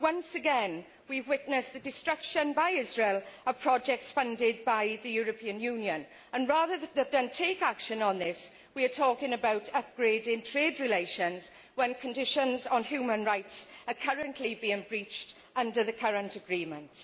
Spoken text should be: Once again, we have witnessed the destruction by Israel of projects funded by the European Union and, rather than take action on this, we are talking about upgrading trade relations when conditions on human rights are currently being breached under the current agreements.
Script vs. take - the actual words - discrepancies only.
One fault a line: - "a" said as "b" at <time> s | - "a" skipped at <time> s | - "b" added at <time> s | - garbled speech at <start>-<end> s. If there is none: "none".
none